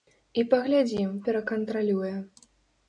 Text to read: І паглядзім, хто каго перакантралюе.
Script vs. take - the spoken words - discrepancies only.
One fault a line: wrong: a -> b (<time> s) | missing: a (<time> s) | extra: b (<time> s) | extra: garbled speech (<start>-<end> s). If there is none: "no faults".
missing: хто каго (1.1 s)